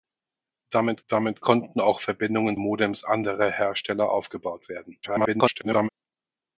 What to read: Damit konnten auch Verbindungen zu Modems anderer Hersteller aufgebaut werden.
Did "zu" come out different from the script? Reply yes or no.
yes